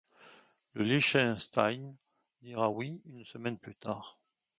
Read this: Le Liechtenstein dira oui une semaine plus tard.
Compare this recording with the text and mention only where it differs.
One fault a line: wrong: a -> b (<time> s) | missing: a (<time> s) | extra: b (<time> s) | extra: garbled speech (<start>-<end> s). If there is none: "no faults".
no faults